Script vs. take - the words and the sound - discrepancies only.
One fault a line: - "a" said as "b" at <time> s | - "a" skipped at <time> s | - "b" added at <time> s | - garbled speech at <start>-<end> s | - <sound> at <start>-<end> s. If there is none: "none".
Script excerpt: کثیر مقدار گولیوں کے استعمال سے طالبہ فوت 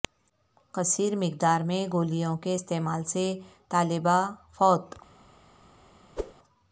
- "میں" added at 1.6 s
- whoosh at 6.2-6.3 s